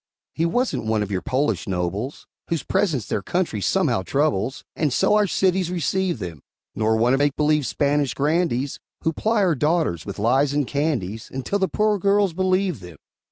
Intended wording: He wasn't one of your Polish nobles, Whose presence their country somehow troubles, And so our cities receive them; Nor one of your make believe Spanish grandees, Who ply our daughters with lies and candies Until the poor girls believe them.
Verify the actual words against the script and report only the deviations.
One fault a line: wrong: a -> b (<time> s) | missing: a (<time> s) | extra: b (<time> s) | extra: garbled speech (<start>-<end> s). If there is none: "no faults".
missing: your (7.2 s)